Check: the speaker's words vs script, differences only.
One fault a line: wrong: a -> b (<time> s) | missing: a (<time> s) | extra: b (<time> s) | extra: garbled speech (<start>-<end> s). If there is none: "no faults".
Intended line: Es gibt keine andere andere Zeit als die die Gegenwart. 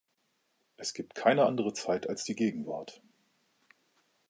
missing: andere (1.7 s)
missing: die (2.4 s)